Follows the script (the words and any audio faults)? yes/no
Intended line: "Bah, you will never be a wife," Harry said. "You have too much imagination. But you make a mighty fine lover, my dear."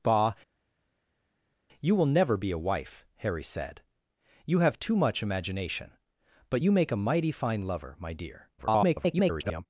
no